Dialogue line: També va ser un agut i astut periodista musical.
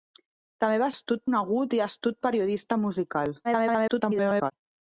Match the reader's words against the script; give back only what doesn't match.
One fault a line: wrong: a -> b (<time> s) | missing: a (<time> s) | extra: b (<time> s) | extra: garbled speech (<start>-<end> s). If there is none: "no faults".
wrong: ser -> astut (0.9 s)
extra: garbled speech (3.4-4.5 s)